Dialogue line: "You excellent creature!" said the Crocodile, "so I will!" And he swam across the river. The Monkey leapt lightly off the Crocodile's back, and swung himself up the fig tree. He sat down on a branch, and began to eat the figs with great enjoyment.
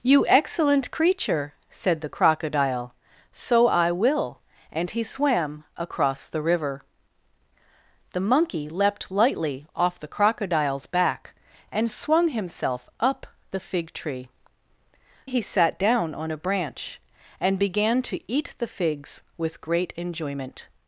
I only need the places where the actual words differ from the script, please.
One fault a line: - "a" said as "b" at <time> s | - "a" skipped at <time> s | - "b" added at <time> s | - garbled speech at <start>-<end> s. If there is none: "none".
none